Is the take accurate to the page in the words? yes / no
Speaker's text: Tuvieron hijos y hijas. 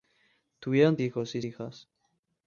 yes